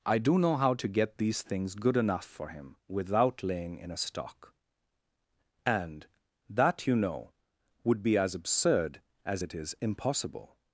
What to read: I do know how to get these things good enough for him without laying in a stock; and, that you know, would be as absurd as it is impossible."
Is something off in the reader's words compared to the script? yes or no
no